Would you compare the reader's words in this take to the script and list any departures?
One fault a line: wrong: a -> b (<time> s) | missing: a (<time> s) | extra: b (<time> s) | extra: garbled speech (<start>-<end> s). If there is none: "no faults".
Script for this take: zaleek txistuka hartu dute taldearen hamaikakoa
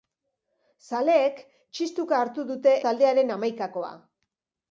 no faults